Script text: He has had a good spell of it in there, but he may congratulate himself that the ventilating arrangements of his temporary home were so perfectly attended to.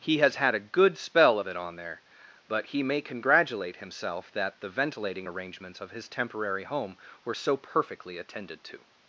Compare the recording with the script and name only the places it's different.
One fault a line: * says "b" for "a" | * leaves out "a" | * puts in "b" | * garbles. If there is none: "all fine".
* says "on" for "in"